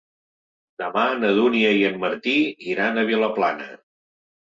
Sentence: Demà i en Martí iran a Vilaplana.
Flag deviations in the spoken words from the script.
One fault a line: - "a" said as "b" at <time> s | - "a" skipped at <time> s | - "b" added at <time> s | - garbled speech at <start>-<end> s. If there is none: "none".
- "na Dúnia" added at 1.2 s